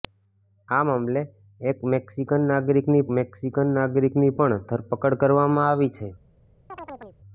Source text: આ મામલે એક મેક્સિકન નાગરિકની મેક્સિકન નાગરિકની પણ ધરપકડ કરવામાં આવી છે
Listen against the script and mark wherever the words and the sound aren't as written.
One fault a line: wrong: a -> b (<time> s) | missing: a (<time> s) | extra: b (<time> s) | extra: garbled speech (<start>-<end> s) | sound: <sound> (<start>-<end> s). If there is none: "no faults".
sound: chirp (6.7-7.2 s)